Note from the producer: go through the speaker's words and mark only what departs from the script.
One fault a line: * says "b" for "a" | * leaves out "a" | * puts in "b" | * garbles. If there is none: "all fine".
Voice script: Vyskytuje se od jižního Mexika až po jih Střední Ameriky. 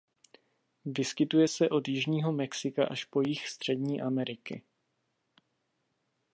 all fine